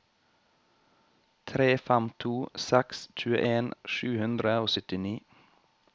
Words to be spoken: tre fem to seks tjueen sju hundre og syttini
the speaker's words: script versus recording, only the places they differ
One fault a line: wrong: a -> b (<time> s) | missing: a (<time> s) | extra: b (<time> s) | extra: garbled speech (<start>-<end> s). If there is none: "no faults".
no faults